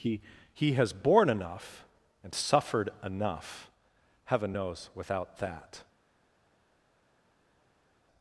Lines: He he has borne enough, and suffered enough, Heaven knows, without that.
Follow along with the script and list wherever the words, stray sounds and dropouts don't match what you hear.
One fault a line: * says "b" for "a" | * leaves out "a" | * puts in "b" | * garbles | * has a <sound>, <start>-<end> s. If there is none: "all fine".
all fine